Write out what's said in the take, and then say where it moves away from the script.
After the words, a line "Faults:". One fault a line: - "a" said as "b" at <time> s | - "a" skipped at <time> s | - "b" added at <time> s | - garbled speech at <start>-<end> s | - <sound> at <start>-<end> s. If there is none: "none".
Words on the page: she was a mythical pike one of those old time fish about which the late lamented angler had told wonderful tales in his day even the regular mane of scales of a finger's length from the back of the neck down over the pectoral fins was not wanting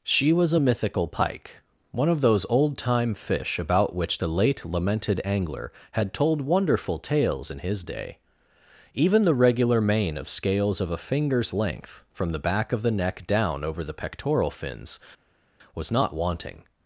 she was a mythical pike one of those old time fish about which the late lamented angler had told wonderful tales in his day even the regular mane of scales of a finger's length from the back of the neck down over the pectoral fins was not wanting
Faults:
none